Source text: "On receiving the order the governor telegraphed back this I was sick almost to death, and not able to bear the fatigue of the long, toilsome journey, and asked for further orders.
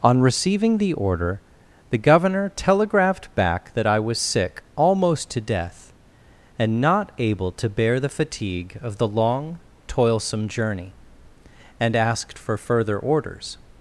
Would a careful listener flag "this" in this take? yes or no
yes